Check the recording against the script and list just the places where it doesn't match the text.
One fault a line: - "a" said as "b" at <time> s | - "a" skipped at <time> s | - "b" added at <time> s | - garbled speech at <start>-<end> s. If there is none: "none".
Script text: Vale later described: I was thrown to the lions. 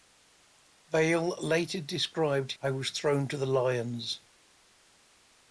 none